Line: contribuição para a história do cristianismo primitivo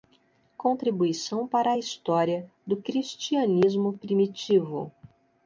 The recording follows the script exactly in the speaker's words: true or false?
true